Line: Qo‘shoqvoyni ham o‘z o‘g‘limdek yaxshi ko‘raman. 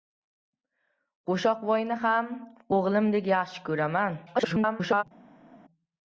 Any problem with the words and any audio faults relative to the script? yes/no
yes